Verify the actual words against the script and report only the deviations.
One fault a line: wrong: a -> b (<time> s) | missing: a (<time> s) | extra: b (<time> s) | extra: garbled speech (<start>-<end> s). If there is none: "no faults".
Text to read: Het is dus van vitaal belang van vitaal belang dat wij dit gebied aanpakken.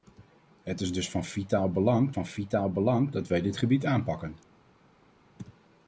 no faults